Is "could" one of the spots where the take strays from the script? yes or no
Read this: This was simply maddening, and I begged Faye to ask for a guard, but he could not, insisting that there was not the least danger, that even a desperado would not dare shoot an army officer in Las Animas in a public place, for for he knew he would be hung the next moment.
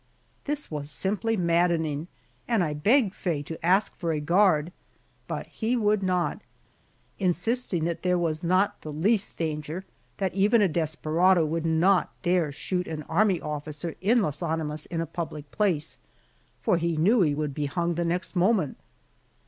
yes